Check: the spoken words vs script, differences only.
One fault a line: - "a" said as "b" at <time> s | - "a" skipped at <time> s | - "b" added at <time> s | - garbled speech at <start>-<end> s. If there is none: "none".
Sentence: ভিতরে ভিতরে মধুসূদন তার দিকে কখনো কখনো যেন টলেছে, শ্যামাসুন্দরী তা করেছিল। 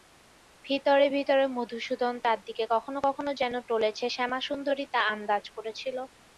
- "আন্দাজ" added at 5.1 s